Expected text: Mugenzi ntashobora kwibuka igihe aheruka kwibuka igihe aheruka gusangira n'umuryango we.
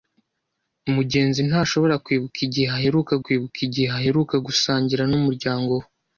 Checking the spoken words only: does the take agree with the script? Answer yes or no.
yes